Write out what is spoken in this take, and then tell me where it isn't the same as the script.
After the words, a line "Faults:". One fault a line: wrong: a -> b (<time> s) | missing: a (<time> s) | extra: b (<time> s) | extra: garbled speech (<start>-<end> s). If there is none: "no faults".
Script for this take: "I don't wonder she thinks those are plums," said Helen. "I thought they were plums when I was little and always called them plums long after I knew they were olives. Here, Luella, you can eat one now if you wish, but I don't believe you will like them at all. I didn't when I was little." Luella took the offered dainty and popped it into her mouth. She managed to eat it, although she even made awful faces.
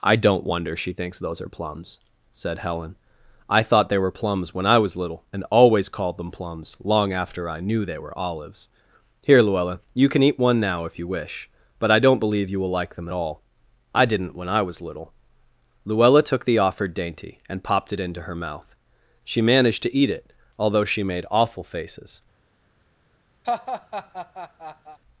"I don't wonder she thinks those are plums," said Helen. "I thought they were plums when I was little and always called them plums long after I knew they were olives. Here, Luella, you can eat one now if you wish, but I don't believe you will like them at all. I didn't when I was little." Luella took the offered dainty and popped it into her mouth. She managed to eat it, although she made awful faces.
Faults:
missing: even (21.0 s)